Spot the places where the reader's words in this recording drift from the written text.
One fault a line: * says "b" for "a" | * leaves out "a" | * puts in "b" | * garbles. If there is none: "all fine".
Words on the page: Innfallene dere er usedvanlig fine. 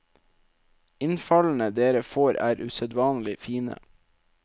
* puts in "får"